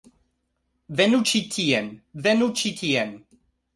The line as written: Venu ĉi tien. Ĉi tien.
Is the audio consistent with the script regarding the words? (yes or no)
no